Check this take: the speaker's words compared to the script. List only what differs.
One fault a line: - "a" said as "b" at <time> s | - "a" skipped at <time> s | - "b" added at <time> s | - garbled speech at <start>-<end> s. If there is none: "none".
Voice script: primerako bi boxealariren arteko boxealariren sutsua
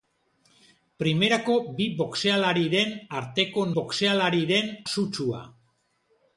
none